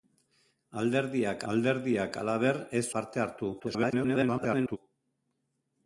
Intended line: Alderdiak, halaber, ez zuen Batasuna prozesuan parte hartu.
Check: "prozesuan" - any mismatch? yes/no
yes